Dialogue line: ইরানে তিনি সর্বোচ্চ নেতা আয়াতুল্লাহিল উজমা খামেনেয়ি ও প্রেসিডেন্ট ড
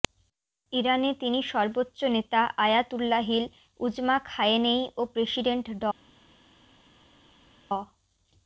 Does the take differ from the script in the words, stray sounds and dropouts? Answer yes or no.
no